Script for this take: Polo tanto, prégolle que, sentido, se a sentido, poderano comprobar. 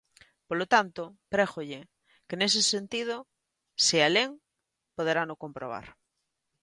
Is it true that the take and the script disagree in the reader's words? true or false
true